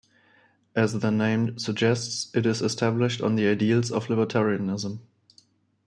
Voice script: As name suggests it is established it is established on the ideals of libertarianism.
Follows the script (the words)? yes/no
no